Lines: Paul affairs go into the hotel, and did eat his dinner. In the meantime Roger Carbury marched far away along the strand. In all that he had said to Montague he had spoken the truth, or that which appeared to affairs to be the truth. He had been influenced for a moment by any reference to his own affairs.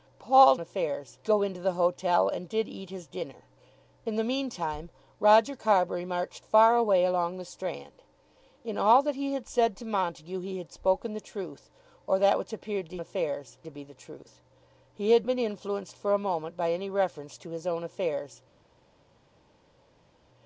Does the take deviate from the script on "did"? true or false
false